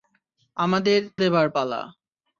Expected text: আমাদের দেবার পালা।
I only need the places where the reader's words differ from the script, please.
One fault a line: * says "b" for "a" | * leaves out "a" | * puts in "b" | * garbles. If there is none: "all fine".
all fine